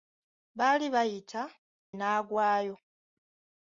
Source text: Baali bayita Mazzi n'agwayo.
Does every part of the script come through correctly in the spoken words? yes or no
no